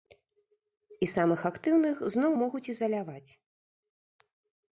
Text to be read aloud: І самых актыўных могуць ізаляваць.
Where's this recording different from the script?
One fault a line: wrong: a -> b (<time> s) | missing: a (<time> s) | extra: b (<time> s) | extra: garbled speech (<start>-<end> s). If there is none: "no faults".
extra: зноў (2.1 s)